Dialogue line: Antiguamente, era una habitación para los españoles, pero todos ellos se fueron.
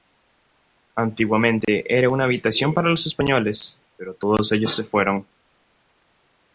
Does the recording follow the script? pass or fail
pass